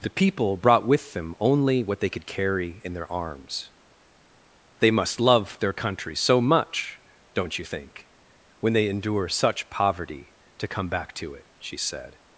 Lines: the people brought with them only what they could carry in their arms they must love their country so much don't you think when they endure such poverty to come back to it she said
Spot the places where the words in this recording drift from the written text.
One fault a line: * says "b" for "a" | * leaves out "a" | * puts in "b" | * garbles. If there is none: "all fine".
all fine